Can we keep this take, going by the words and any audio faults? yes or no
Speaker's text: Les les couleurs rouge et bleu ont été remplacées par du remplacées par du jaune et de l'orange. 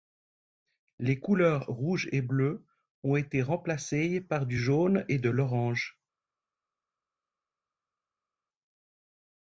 no